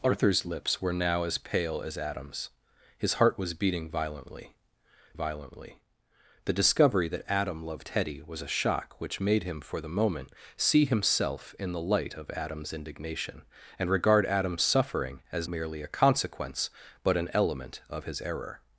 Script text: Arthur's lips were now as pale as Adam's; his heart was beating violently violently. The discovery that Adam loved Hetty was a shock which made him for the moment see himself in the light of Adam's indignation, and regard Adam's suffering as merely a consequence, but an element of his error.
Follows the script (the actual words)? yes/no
yes